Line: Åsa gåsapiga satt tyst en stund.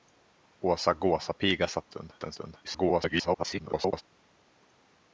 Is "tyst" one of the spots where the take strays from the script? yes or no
yes